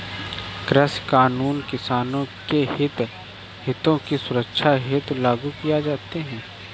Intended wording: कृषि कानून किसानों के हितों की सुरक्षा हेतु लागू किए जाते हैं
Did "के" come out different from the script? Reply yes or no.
no